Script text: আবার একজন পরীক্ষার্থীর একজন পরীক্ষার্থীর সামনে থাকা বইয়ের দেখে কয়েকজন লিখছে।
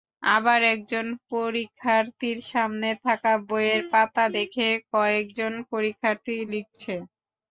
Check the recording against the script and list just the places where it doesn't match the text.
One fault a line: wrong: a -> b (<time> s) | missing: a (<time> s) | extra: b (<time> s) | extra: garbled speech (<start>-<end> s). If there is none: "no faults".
missing: একজন পরীক্ষার্থীর (2.4 s)
extra: পাতা (3.9 s)
extra: পরীক্ষার্থী (5.7 s)